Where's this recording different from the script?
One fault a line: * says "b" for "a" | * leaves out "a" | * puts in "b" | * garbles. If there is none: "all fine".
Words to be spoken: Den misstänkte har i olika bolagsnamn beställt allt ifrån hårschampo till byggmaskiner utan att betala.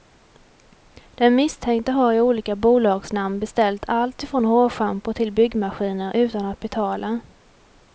all fine